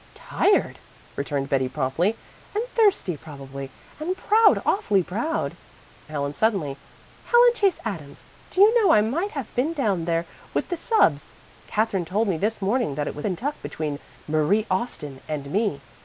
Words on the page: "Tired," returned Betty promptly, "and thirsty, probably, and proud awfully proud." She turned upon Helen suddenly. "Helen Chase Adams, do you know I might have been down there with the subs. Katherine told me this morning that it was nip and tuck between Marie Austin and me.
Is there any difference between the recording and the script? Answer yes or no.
yes